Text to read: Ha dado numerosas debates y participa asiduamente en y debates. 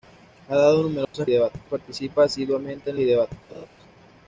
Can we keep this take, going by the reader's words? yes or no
yes